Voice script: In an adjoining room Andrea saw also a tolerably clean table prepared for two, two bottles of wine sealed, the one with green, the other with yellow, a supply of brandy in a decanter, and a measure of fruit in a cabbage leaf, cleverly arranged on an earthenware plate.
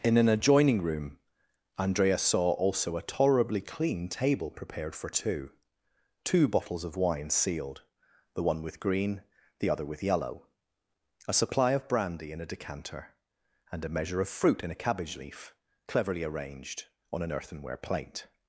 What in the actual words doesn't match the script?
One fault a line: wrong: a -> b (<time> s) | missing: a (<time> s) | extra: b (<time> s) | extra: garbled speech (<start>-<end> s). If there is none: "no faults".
no faults